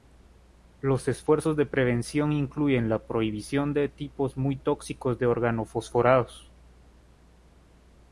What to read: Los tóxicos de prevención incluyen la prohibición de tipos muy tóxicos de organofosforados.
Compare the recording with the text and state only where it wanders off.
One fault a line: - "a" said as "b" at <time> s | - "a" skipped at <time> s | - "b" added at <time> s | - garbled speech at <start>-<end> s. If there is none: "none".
- "tóxicos" said as "esfuerzos" at 1.1 s